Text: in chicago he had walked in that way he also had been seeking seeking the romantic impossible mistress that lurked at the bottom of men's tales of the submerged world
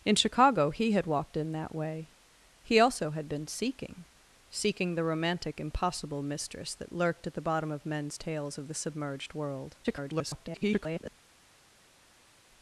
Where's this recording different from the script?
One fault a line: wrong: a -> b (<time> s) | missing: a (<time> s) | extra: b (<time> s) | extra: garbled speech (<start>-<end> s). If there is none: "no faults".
extra: garbled speech (9.8-11.1 s)